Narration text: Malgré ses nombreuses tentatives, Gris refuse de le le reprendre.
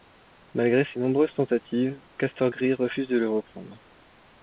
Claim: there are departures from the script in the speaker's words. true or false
true